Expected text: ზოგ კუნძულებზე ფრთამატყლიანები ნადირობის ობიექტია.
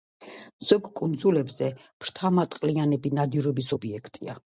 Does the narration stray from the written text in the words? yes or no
no